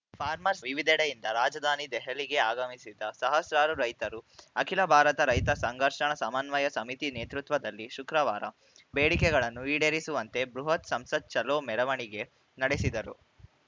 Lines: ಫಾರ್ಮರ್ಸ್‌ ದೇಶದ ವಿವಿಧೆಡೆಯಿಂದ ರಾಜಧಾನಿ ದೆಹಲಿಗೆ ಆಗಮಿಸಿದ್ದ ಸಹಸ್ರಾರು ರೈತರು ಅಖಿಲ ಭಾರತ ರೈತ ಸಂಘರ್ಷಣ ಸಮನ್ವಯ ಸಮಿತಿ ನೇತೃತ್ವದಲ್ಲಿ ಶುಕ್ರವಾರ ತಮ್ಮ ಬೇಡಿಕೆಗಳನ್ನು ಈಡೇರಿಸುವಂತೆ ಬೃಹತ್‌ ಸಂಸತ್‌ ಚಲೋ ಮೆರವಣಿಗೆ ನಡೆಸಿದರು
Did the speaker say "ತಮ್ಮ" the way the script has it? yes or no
no